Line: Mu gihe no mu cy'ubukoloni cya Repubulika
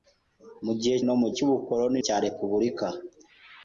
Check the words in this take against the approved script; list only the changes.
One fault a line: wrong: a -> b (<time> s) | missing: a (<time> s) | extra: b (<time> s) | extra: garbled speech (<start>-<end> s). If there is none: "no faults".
no faults